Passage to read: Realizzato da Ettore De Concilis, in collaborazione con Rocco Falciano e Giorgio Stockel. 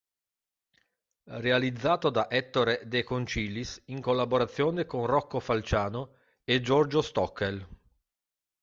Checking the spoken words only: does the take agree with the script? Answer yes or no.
yes